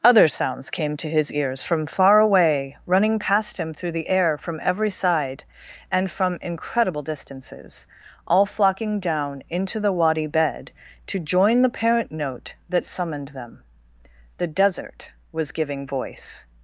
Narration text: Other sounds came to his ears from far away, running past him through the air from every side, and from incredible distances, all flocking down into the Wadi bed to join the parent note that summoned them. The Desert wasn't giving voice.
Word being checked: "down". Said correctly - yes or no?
yes